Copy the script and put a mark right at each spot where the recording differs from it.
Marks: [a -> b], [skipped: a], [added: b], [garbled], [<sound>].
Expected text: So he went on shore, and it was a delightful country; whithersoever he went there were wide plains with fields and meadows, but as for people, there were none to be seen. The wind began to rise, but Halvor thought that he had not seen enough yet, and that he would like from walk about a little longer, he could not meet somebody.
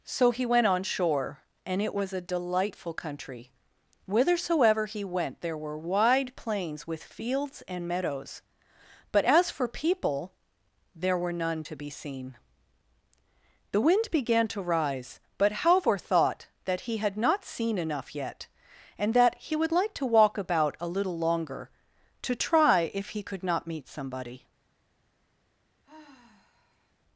So he went on shore, and it was a delightful country; whithersoever he went there were wide plains with fields and meadows, but as for people, there were none to be seen. The wind began to rise, but Halvor thought that he had not seen enough yet, and that he would like [from -> to] walk about a little longer, [added: to try if] he could not meet somebody. [sigh]